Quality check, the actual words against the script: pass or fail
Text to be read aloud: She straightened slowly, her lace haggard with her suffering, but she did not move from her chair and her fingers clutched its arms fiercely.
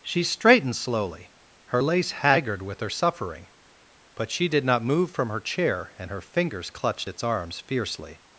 pass